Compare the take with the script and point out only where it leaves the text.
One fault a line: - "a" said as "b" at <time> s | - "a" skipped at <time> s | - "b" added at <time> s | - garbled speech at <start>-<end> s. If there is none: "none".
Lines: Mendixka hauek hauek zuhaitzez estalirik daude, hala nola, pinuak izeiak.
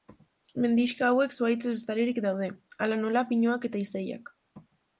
- "hauek" skipped at 1.4 s
- "eta" added at 3.7 s